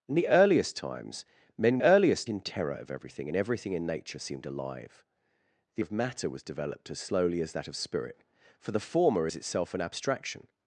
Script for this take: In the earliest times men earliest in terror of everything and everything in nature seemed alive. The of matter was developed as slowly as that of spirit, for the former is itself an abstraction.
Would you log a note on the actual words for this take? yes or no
no